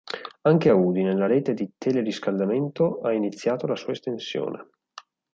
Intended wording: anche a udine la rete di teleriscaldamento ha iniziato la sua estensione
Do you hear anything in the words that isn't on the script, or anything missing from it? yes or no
no